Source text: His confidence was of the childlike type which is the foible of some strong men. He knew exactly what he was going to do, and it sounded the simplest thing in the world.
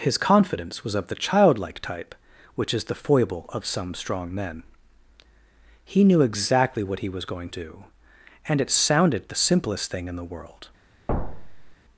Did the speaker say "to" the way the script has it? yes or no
no